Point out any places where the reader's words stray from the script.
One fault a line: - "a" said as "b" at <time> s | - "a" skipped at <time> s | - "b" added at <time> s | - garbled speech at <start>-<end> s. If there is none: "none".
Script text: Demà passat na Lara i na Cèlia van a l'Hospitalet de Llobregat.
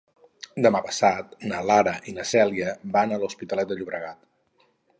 none